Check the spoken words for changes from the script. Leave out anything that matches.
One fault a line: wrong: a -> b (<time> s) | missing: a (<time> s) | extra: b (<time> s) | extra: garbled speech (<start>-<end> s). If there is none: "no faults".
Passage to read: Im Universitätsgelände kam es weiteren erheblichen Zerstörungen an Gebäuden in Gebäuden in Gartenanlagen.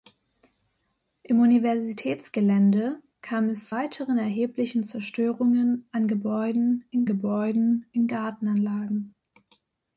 no faults